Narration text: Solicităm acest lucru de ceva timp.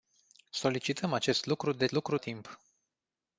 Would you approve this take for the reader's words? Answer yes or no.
no